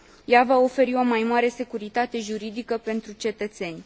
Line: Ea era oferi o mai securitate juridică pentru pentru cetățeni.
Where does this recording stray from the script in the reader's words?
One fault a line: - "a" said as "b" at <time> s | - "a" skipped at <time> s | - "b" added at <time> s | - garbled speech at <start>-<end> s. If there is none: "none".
- "era" said as "va" at 0.4 s
- "mare" added at 1.2 s
- "pentru" skipped at 3.1 s